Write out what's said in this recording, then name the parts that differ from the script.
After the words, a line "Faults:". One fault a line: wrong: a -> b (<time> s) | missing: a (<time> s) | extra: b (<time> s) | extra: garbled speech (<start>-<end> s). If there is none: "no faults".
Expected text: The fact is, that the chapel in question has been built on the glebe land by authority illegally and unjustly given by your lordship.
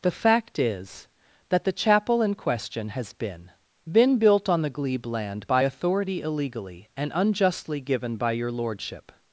The fact is, that the chapel in question has been been built on the glebe land by authority illegally and unjustly given by your lordship.
Faults:
extra: been (3.9 s)